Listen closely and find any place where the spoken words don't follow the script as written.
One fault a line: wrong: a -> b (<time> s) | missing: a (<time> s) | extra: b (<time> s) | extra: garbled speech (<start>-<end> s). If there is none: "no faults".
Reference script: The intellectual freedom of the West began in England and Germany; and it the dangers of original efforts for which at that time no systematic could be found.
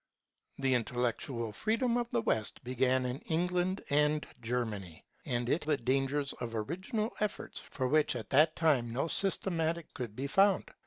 no faults